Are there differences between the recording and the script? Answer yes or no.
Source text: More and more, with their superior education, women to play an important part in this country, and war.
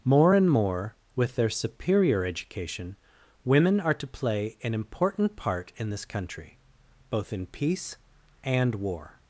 yes